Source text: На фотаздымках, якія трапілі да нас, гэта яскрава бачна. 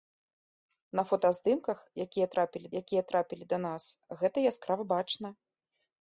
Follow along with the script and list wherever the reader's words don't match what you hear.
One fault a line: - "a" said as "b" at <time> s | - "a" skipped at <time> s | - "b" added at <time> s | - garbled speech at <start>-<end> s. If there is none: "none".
- "якія трапілі" added at 2.8 s